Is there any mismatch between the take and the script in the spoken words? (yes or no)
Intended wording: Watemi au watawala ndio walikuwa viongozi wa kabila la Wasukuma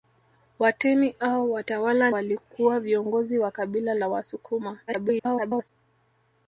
yes